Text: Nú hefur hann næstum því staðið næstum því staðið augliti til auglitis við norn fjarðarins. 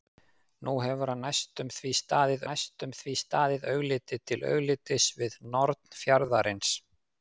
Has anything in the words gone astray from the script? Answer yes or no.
no